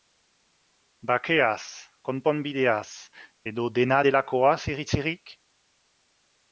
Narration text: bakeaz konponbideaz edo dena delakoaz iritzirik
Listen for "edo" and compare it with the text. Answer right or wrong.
right